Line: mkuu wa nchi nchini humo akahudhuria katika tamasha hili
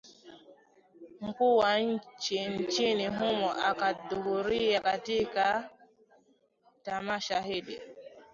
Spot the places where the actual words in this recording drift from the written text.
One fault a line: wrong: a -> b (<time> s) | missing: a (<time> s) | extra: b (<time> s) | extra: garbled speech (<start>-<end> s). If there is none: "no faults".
no faults